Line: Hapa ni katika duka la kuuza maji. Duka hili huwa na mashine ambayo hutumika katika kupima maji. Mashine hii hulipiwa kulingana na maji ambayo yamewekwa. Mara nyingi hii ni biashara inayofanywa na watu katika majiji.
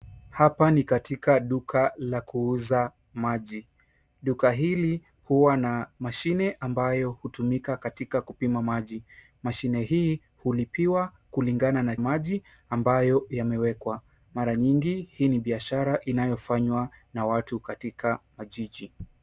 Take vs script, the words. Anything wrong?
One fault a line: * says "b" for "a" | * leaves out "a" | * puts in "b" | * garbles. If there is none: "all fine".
all fine